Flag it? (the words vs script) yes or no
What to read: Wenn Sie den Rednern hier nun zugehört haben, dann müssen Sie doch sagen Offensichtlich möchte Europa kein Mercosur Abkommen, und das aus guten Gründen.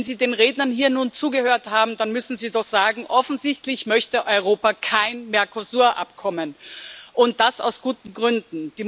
no